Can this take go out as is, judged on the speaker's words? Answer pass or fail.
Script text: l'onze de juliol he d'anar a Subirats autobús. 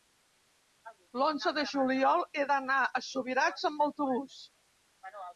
fail